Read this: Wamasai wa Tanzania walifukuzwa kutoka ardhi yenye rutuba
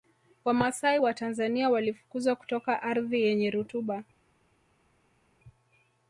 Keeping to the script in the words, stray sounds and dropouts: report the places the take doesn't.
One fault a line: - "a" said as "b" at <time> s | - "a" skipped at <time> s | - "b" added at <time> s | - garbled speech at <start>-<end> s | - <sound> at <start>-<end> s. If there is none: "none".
none